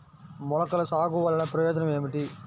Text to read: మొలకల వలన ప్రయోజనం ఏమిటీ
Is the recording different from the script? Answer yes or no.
yes